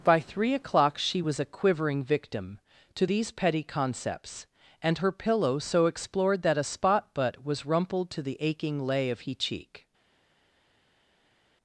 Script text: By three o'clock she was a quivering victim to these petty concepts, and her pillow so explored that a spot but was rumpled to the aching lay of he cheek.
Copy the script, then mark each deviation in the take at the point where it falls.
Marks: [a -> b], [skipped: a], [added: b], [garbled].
By three o'clock she was a quivering victim to these petty concepts, and her pillow so explored that a spot but was rumpled to the aching lay of he cheek.